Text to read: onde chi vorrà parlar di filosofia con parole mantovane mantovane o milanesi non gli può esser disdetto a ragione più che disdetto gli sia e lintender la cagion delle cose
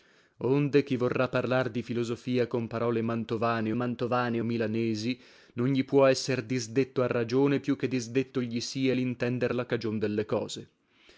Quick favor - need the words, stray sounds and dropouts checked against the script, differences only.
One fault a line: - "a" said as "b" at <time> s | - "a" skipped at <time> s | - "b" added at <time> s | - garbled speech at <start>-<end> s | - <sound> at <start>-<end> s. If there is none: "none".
none